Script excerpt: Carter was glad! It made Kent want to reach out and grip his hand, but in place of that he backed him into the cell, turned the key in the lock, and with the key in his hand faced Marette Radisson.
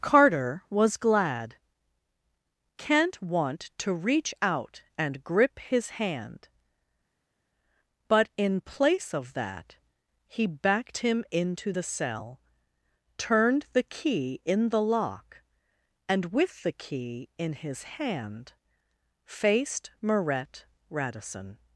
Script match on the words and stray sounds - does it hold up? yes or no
no